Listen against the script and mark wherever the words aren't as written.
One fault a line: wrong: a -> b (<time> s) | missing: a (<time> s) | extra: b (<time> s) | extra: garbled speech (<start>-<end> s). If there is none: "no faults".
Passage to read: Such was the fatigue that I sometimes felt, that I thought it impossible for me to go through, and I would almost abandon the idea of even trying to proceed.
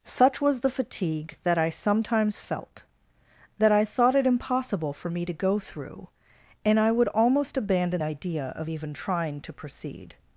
missing: the (8.0 s)